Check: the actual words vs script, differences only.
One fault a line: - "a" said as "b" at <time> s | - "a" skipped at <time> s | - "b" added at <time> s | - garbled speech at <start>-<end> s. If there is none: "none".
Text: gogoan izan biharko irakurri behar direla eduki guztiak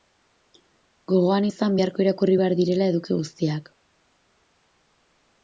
none